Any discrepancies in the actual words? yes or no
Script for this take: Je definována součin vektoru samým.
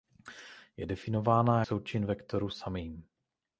no